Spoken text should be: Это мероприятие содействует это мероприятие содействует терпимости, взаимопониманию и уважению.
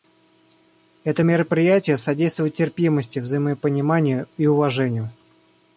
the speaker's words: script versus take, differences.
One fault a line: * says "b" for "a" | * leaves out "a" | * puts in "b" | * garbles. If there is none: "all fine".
* leaves out "это мероприятие содействует"